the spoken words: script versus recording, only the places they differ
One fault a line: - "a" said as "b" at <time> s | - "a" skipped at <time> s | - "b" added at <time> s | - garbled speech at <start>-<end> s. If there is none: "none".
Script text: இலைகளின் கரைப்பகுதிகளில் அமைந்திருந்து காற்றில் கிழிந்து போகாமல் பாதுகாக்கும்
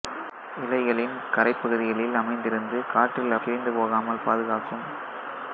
none